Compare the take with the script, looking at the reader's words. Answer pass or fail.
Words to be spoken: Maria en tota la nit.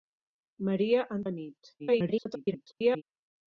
fail